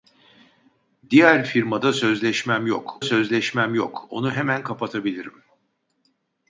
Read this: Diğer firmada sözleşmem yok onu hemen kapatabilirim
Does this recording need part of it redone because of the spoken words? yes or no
yes